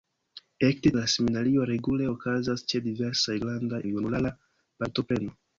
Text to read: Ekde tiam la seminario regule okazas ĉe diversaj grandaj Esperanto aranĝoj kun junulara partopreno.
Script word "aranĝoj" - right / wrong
wrong